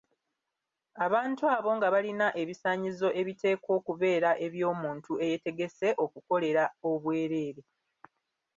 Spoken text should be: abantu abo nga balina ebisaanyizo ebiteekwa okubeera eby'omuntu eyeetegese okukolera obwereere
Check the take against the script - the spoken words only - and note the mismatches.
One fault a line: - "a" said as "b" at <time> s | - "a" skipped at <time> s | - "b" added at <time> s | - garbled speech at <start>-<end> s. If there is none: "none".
none